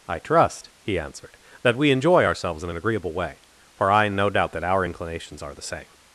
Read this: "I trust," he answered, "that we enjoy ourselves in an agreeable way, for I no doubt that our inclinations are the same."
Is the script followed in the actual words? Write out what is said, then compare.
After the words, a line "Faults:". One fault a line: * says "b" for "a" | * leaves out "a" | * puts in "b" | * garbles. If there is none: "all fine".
"I trust," he answered, "that we enjoy ourselves in an agreeable way, for I no doubt that our inclinations are the same."
Faults:
all fine